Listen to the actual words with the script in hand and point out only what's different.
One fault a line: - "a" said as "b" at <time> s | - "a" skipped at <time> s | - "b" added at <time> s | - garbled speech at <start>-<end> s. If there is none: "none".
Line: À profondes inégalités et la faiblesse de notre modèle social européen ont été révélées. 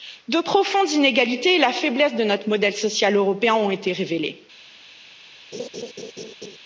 - "À" said as "De" at 0.3 s